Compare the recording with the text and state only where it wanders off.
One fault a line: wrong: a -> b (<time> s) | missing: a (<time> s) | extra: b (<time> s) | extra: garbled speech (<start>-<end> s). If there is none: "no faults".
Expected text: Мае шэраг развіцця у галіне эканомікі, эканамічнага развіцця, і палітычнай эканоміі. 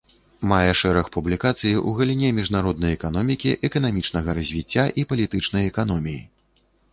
wrong: развіцця -> публікацый (1.1 s)
extra: міжнароднай (2.4 s)